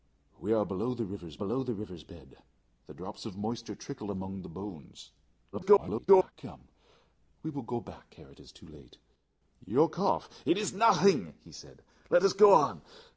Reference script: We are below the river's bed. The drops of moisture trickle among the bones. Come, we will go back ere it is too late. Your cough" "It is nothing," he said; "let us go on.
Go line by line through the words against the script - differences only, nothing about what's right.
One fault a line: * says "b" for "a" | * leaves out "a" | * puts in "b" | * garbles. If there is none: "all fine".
* puts in "below the river's"
* garbles